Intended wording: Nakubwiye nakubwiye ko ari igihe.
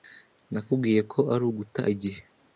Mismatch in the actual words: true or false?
true